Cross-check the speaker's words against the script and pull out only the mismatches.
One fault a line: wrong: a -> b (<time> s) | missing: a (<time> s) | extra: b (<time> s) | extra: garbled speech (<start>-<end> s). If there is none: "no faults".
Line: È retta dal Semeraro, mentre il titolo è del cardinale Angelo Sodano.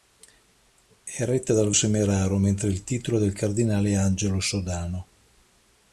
no faults